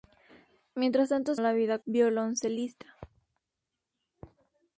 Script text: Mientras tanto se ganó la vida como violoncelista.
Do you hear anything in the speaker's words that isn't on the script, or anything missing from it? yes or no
yes